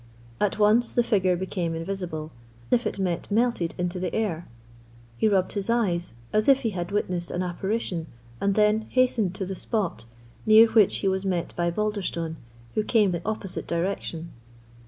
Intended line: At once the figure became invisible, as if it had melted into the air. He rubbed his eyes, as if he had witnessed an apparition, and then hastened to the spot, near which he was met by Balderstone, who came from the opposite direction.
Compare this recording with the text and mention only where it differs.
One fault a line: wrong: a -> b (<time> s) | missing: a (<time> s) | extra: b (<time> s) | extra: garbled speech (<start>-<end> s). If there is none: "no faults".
missing: as (2.3 s)
wrong: had -> met (3.0 s)
missing: from (13.1 s)